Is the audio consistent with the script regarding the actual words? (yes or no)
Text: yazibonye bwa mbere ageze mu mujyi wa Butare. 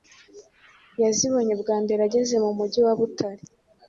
yes